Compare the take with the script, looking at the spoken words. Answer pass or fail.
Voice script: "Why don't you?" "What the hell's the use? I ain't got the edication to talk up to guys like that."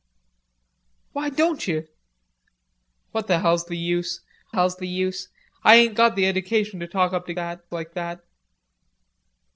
fail